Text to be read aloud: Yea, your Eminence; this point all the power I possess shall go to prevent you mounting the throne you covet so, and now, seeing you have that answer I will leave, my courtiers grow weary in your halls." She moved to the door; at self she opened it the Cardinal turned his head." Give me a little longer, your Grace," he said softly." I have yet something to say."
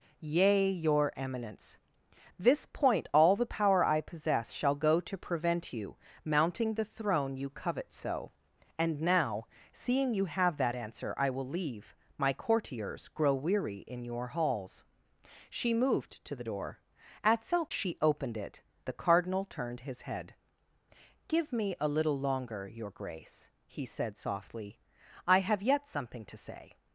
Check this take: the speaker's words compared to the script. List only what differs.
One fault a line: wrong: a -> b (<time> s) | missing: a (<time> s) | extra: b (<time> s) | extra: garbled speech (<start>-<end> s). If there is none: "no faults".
no faults